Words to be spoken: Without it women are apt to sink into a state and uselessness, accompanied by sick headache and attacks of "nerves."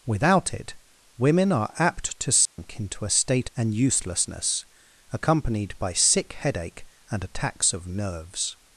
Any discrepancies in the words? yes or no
no